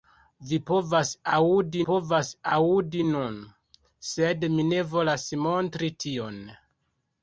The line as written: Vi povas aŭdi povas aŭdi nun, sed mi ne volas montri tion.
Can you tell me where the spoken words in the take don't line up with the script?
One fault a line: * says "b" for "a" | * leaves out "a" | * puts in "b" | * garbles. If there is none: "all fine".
all fine